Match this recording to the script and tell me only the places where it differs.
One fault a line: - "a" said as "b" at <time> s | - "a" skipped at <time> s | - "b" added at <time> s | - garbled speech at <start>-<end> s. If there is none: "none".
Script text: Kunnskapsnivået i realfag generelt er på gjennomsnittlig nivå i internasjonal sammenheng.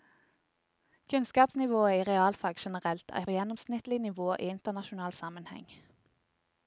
- "på" skipped at 3.2 s